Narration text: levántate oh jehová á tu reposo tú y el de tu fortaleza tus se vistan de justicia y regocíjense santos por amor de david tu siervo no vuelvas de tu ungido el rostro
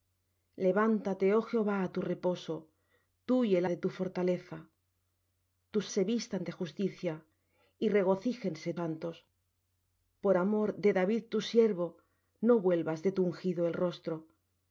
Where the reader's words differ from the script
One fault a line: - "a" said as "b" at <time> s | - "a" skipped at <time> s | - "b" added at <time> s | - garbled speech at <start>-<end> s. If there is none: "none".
none